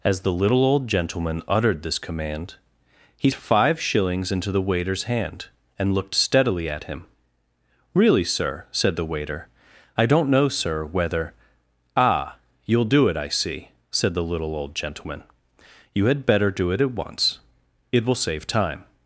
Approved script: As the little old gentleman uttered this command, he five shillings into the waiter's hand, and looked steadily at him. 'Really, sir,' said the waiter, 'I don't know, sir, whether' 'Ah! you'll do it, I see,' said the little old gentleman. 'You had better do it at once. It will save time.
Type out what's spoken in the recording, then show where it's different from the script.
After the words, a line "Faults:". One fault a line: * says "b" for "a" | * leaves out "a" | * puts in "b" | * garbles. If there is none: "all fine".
As the little old gentleman uttered this command, he five shillings into the waiter's hand, and looked steadily at him. 'Really, sir,' said the waiter, 'I don't know, sir, whether' 'Ah! you'll do it, I see,' said the little old gentleman. 'You had better do it at once. It will save time.
Faults:
all fine